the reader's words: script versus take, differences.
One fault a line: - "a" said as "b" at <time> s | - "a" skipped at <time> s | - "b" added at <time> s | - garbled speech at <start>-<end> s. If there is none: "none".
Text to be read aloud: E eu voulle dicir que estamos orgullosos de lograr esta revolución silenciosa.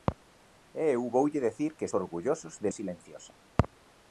- "estamos" skipped at 1.9 s
- "lograr esta revolución" skipped at 2.7 s